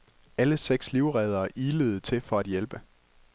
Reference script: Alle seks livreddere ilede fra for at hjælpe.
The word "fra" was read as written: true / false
false